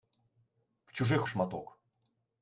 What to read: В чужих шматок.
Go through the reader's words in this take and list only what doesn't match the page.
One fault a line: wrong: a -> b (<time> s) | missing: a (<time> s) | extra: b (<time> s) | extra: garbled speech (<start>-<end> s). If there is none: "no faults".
no faults